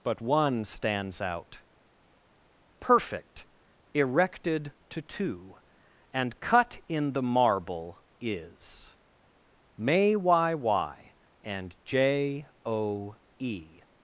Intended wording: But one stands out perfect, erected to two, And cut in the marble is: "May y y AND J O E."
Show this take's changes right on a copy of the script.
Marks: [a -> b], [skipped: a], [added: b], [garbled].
But one stands out perfect, erected to two, And cut in the marble is: "May y y AND J O E."